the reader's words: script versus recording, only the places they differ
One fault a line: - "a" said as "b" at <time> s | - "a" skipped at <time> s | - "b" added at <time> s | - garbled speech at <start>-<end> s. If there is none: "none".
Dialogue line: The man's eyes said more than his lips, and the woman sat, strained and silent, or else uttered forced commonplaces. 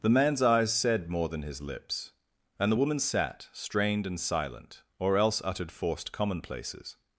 none